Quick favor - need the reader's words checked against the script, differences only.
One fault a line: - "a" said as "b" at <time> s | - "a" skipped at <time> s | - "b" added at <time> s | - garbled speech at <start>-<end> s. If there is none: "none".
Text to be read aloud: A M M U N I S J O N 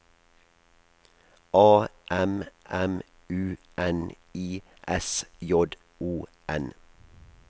none